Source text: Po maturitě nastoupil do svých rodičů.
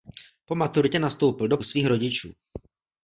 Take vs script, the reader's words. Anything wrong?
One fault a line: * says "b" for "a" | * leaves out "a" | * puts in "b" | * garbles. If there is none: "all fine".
all fine